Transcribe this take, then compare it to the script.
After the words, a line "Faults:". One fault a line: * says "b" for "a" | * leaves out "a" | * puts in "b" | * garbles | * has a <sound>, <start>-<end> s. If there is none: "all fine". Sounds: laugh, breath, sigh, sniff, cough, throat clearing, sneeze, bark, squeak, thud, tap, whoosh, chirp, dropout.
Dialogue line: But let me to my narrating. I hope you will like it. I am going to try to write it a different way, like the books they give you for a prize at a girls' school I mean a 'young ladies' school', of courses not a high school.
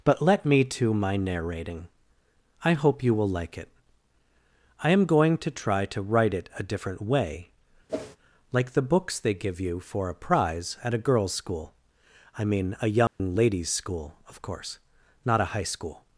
But let me to my narrating. I hope you will like it. I am going to try to write it a different way, like the books they give you for a prize at a girls' school I mean a 'young ladies' school', of course not a high school.
Faults:
* has a whoosh, 7.9-8.2 s
* has a dropout, 13.1-13.2 s
* says "course" for "courses"